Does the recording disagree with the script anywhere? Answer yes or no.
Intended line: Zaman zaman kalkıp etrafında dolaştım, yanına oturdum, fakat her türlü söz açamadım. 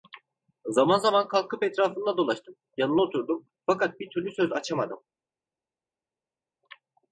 yes